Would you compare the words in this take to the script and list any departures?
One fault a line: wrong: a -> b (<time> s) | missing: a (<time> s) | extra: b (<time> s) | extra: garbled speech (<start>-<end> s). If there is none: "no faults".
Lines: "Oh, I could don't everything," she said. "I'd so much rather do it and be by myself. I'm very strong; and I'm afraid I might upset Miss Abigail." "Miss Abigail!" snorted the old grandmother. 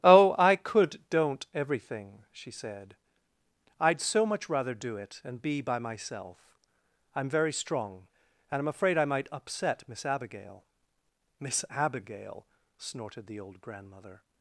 no faults